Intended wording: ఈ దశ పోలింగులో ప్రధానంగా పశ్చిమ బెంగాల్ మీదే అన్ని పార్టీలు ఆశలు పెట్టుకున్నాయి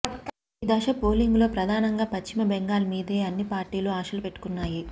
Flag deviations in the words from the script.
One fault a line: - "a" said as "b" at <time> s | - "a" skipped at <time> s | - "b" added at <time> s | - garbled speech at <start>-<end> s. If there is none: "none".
none